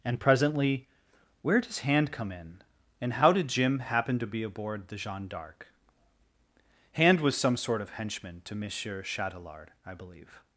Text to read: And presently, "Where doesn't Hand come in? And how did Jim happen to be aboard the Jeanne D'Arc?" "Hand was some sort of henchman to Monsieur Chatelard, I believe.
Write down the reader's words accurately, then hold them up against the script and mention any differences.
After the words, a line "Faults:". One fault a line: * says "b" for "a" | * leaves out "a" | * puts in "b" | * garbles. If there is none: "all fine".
And presently, "Where does Hand come in? And how did Jim happen to be aboard the Jeanne D'Arc?" "Hand was some sort of henchman to Monsieur Chatelard, I believe.
Faults:
* says "does" for "doesn't"